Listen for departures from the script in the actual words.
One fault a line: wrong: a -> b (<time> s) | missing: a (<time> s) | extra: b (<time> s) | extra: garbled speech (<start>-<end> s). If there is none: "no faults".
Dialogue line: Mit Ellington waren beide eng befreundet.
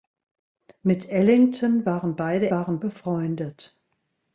wrong: eng -> waren (2.5 s)